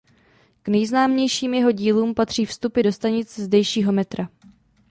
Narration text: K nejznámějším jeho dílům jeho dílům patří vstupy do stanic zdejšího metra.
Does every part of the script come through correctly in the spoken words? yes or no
no